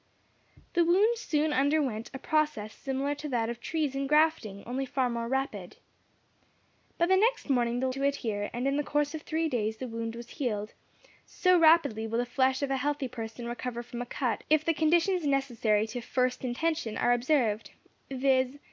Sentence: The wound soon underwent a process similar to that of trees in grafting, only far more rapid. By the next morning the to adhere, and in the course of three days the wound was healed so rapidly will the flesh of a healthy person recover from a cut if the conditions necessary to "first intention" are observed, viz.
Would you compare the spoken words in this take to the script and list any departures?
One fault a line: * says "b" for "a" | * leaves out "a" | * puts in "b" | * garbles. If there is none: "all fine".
all fine